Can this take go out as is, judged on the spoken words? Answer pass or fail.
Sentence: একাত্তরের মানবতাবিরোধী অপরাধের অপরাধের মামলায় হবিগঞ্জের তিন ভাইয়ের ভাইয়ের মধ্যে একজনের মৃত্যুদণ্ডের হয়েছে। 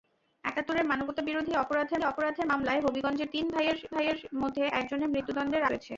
pass